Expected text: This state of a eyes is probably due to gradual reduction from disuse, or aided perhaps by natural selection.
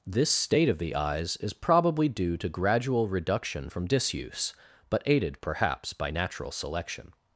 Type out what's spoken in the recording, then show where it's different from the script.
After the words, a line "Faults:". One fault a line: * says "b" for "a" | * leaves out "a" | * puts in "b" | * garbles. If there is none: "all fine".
This state of the eyes is probably due to gradual reduction from disuse, but aided perhaps by natural selection.
Faults:
* says "the" for "a"
* says "but" for "or"